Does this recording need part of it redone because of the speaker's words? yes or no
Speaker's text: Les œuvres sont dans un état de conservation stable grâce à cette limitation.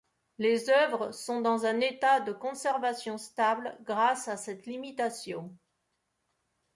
no